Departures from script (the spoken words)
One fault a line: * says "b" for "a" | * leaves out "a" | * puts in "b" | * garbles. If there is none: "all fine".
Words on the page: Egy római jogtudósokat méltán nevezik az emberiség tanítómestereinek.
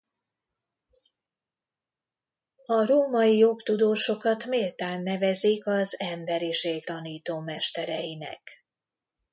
* says "A" for "Egy"